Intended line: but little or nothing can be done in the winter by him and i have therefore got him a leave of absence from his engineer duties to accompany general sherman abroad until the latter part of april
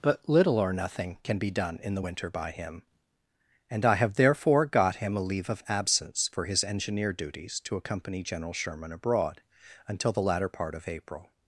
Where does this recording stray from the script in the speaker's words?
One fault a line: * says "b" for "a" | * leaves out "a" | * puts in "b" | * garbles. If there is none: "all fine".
* says "for" for "from"